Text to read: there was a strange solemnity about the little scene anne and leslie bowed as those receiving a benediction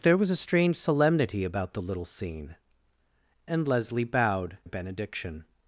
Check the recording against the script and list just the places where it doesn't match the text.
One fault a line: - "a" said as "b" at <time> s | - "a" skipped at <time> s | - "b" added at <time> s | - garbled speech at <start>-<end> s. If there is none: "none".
- "anne" skipped at 2.5 s
- "as those receiving" skipped at 4.6 s